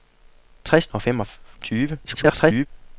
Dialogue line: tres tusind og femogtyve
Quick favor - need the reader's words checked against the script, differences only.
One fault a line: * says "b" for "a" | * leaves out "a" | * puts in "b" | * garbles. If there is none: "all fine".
* leaves out "tusind"
* garbles